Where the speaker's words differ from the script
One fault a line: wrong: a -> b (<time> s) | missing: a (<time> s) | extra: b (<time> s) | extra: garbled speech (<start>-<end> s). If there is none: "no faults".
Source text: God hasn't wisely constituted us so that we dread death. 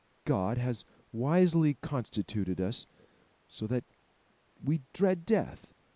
wrong: hasn't -> has (0.6 s)